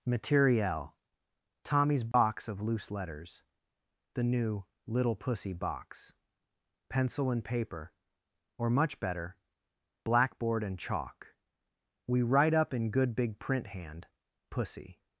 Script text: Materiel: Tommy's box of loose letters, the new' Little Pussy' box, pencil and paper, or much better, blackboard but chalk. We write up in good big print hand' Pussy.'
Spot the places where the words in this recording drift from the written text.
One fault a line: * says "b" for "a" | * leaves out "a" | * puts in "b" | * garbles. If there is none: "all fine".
* says "and" for "but"